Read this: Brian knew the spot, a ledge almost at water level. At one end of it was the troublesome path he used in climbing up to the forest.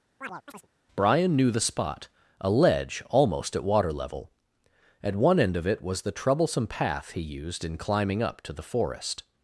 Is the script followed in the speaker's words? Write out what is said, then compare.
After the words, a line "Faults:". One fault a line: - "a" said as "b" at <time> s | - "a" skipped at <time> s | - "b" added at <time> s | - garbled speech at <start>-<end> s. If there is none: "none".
Brian knew the spot, a ledge almost at water level. At one end of it was the troublesome path he used in climbing up to the forest.
Faults:
none